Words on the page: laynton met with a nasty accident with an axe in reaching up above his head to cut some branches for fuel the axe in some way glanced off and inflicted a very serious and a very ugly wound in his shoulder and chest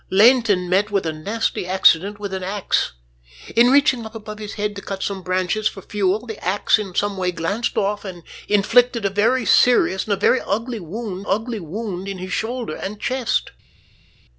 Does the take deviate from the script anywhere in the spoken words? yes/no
yes